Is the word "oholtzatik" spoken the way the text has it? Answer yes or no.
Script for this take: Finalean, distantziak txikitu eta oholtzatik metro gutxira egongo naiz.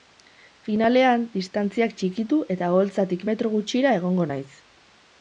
yes